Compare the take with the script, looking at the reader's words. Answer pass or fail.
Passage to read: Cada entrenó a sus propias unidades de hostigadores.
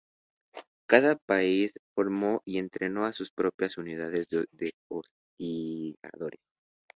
fail